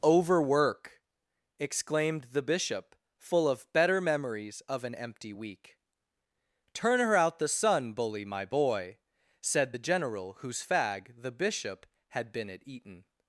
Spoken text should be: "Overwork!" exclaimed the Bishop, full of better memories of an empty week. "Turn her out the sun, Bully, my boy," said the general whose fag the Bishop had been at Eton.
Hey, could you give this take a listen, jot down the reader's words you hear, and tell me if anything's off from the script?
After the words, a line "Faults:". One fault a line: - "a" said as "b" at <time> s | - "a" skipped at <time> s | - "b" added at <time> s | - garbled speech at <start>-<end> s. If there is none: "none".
"Overwork!" exclaimed the Bishop, full of better memories of an empty week. "Turn her out the sun, Bully, my boy," said the general whose fag the Bishop had been at Eton.
Faults:
none